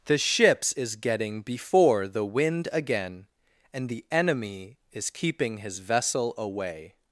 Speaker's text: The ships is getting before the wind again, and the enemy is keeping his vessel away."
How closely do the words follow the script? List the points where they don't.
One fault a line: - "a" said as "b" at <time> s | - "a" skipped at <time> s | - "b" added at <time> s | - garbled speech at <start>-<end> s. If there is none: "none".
none